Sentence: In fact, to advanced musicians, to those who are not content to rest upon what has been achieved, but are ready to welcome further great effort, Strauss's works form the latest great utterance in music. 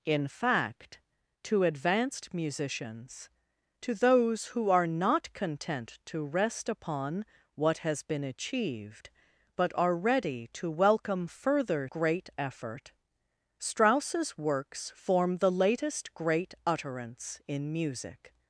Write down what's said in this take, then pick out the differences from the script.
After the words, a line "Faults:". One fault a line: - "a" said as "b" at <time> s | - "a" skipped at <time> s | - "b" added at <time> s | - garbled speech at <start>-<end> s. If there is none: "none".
In fact, to advanced musicians, to those who are not content to rest upon what has been achieved, but are ready to welcome further great effort, Strauss's works form the latest great utterance in music.
Faults:
none